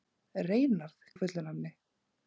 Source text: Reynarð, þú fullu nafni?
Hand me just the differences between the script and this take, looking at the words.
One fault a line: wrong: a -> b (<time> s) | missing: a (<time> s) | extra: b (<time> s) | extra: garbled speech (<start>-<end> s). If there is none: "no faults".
no faults